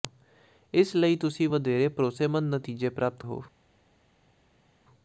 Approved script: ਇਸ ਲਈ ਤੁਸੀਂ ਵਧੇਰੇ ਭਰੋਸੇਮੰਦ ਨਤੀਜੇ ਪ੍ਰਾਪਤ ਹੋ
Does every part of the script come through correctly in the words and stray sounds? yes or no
yes